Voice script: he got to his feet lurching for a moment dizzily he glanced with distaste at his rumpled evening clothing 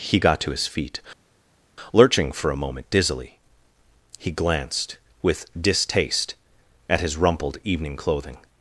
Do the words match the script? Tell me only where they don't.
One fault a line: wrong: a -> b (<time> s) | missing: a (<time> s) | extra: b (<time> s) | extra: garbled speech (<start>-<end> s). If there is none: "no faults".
no faults